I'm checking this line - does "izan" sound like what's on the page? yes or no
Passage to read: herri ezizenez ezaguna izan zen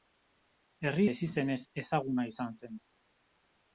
yes